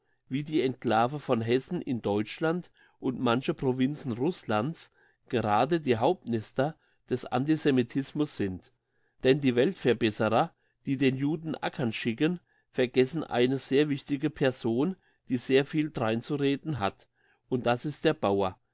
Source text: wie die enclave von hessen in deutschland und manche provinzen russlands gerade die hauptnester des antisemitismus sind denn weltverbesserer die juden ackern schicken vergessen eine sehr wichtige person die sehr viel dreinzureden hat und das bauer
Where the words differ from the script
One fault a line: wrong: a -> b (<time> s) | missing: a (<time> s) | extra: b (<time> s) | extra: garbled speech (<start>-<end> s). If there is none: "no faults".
extra: die (9.4 s)
extra: den (11.0 s)
extra: ist der (17.8 s)